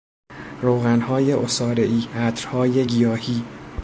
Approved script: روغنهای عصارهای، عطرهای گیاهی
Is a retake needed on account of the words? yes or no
no